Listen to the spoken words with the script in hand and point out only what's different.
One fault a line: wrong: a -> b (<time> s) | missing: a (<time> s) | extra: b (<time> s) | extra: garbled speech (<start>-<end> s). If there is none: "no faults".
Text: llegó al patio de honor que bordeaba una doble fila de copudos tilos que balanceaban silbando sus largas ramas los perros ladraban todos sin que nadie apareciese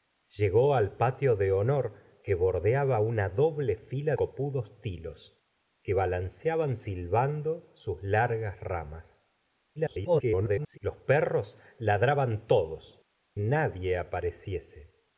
missing: de (4.2 s)
extra: garbled speech (9.8-10.8 s)
missing: sin que (13.0 s)